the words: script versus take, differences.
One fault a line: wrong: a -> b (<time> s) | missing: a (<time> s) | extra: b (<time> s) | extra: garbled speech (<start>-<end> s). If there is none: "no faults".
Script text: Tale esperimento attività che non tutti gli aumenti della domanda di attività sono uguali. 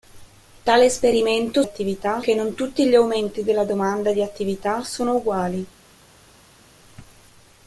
no faults